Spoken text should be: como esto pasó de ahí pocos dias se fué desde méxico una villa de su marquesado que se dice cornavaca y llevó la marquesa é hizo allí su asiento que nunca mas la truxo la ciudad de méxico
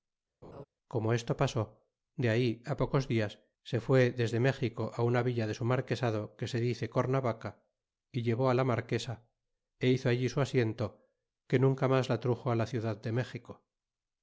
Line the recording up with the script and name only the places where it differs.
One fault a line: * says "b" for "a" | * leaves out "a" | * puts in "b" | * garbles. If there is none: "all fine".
all fine